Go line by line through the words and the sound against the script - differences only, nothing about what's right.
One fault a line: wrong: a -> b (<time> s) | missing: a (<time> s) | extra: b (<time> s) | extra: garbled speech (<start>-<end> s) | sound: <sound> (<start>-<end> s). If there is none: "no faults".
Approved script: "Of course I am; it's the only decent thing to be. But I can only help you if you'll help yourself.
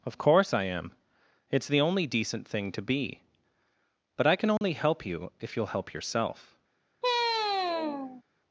sound: dropout (4.6-4.6 s)
sound: sigh (7.0-8.2 s)